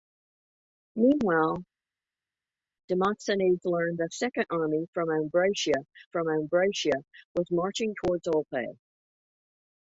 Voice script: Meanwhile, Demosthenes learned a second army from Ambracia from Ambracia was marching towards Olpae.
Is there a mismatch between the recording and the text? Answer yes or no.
no